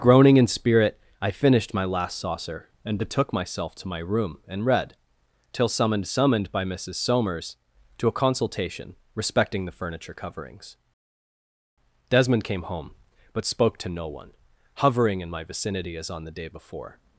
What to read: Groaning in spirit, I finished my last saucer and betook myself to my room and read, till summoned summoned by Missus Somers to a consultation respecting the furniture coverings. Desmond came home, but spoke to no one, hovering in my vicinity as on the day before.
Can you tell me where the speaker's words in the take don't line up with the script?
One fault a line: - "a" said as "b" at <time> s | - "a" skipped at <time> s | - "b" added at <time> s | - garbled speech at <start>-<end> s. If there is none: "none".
none